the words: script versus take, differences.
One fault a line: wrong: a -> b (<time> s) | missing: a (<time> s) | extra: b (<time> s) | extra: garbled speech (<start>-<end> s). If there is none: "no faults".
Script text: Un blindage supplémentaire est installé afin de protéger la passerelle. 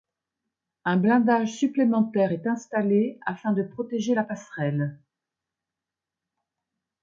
no faults